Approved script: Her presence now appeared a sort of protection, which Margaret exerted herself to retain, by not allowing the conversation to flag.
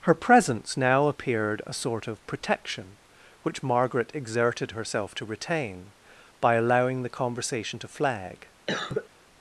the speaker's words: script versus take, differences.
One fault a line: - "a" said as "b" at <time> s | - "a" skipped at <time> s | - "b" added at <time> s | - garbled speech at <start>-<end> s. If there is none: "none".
- "not" skipped at 6.5 s